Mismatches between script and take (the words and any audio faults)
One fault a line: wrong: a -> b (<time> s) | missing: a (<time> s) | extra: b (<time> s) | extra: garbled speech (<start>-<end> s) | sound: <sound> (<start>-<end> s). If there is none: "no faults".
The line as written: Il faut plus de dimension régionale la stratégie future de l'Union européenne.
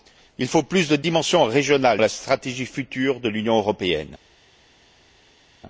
no faults